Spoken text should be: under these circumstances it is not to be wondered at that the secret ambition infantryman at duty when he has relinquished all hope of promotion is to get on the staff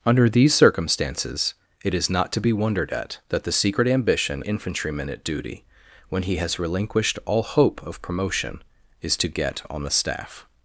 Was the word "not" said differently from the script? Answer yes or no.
no